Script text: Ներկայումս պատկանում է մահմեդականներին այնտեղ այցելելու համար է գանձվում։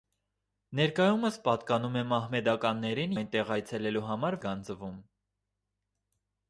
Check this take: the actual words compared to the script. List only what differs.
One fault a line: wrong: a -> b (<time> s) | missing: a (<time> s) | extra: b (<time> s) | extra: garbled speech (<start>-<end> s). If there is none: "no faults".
no faults